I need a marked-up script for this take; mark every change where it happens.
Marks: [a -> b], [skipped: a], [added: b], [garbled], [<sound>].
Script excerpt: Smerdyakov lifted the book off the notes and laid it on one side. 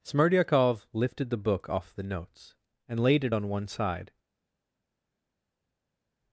Smerdyakov lifted the book off the notes and laid it on one side.